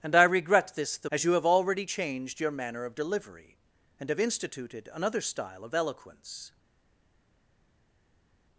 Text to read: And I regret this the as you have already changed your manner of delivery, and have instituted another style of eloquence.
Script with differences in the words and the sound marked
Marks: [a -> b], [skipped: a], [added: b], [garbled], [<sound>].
And I regret this the as you have already changed your manner of delivery, and have instituted another style of eloquence.